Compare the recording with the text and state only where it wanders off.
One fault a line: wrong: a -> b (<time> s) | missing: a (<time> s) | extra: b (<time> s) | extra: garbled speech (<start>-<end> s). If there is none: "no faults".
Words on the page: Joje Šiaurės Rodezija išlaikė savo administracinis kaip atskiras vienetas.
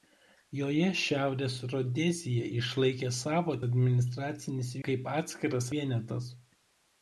no faults